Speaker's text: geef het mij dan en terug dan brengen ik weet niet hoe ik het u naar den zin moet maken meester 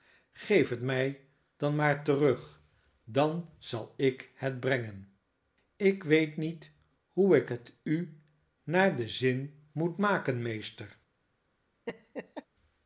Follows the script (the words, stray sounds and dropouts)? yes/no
no